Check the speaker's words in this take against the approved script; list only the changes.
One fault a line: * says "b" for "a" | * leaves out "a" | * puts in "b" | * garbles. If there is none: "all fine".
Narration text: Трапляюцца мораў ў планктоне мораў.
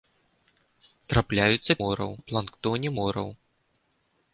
all fine